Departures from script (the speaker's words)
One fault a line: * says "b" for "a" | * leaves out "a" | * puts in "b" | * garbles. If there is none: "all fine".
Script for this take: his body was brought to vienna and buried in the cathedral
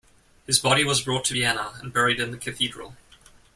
all fine